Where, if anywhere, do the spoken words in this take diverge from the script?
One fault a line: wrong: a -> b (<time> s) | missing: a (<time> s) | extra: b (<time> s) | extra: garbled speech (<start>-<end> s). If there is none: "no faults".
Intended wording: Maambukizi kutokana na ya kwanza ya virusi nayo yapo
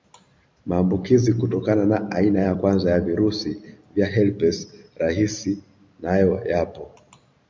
extra: aina (2.1 s)
extra: vya herpes rahisi (4.0 s)